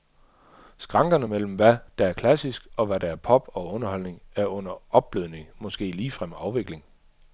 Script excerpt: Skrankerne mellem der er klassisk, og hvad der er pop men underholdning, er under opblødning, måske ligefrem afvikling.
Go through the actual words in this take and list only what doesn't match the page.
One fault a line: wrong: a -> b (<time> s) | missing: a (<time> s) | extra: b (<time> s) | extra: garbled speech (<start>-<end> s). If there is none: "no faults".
extra: hvad (1.5 s)
wrong: men -> og (3.5 s)